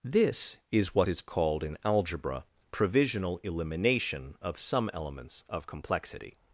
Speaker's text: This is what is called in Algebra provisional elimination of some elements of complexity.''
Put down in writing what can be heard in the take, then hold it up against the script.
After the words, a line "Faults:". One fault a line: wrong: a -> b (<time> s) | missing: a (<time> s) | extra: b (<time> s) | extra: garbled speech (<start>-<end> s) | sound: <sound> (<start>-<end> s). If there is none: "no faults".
This is what is called in Algebra provisional elimination of some elements of complexity.''
Faults:
no faults